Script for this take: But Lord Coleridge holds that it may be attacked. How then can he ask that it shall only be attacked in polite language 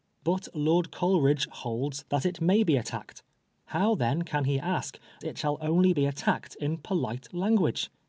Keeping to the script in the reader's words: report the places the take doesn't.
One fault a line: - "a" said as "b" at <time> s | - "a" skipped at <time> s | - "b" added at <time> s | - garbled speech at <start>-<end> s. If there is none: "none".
- "that" skipped at 5.0 s